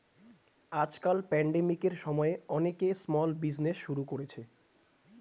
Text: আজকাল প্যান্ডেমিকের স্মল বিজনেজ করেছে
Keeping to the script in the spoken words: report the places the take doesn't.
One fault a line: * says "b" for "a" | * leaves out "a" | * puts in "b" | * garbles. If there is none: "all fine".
* puts in "সময়ে অনেকে"
* puts in "শুরু"